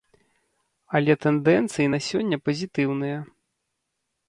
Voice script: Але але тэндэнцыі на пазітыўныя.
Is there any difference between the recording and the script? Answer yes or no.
yes